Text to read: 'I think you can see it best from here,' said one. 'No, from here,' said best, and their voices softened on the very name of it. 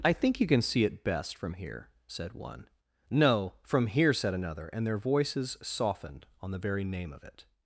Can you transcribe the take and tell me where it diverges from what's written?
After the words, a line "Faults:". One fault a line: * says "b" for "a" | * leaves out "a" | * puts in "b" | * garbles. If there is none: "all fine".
'I think you can see it best from here,' said one. 'No, from here,' said another, and their voices softened on the very name of it.
Faults:
* says "another" for "best"